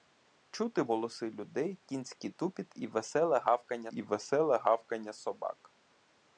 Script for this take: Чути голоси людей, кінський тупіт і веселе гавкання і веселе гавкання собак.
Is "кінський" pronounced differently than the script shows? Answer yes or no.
no